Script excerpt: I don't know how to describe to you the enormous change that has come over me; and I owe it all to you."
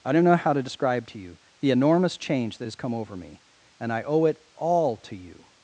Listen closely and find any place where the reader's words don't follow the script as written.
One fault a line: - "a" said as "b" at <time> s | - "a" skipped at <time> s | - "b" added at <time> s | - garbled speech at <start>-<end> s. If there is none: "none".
none